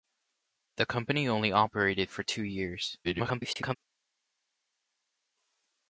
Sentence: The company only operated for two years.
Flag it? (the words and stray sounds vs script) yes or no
yes